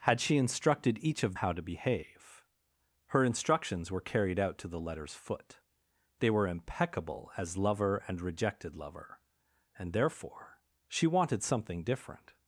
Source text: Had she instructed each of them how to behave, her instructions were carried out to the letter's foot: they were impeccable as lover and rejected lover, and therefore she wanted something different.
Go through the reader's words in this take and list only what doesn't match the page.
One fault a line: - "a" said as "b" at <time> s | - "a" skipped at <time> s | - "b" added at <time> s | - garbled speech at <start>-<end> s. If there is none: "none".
- "them" skipped at 1.4 s